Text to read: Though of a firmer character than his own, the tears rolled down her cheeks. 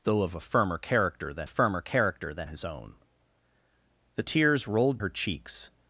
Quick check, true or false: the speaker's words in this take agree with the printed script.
false